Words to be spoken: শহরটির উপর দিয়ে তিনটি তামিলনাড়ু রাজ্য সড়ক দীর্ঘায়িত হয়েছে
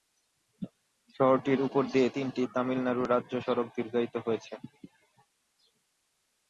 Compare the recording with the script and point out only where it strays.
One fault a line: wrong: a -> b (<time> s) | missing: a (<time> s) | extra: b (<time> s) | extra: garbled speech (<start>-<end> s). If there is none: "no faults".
no faults